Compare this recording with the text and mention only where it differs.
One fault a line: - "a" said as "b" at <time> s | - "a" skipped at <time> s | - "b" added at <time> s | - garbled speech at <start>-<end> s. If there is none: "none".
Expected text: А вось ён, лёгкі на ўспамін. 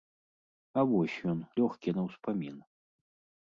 none